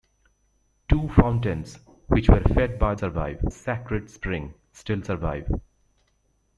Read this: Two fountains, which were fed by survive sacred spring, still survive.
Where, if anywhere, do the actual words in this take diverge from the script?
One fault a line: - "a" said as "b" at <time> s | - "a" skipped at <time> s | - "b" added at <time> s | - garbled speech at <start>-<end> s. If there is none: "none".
none